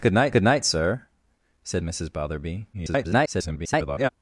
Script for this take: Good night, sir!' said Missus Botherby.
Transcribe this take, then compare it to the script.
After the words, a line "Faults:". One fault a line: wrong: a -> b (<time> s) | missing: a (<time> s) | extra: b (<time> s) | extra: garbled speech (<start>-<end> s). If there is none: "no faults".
Good night good night, sir!' said Missus Botherby. [garbled]
Faults:
extra: good night (0.3 s)
extra: garbled speech (2.7-4.1 s)